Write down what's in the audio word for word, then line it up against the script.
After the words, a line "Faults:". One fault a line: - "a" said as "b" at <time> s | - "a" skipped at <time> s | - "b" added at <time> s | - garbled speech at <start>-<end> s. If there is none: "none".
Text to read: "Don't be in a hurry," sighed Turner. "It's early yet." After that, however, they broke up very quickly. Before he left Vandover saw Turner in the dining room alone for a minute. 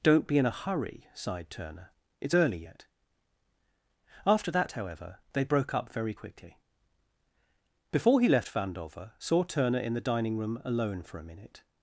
"Don't be in a hurry," sighed Turner. "It's early yet." After that, however, they broke up very quickly. Before he left Vandover saw Turner in the dining room alone for a minute.
Faults:
none